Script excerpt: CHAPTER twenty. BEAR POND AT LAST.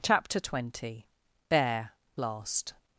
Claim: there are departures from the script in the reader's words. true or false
true